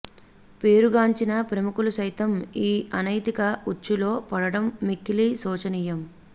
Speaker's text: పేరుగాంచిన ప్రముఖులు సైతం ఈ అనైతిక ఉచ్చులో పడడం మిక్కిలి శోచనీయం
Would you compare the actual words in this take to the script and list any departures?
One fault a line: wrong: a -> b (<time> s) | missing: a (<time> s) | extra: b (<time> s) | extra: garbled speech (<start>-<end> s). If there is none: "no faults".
no faults